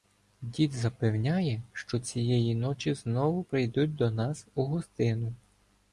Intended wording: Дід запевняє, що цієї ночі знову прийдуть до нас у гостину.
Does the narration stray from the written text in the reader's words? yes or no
no